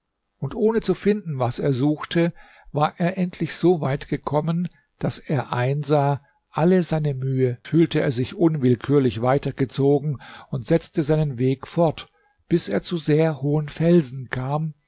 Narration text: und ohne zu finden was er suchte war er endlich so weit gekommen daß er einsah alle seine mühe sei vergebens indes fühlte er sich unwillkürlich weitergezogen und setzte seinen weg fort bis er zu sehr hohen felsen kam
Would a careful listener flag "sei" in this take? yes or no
yes